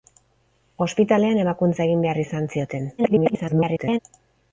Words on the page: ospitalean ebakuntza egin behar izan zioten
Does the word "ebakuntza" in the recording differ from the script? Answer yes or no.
no